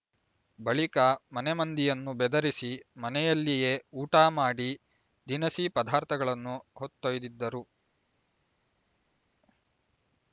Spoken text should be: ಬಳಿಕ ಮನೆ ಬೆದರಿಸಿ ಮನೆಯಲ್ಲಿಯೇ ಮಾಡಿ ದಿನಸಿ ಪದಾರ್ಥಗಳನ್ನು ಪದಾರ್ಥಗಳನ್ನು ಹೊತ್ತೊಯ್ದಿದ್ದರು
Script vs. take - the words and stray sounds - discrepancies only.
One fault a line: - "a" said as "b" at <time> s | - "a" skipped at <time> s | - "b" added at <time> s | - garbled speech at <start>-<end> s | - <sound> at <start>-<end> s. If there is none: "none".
- "ಮಂದಿಯನ್ನು" added at 1.5 s
- "ಊಟ" added at 4.0 s
- "ಪದಾರ್ಥಗಳನ್ನು" skipped at 6.6 s